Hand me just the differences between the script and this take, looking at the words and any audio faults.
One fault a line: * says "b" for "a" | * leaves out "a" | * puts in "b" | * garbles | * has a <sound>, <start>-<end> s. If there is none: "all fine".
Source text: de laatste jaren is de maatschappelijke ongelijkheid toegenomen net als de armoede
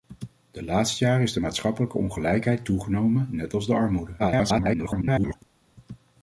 * garbles